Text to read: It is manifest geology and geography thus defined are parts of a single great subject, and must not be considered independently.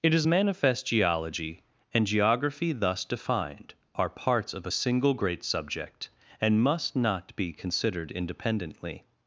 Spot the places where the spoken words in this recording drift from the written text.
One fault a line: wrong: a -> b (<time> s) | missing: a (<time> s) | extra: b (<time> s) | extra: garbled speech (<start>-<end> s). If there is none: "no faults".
no faults